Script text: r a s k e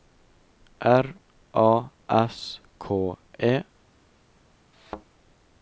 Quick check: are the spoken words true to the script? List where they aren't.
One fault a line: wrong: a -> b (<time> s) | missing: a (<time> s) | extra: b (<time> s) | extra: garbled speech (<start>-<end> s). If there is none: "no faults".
no faults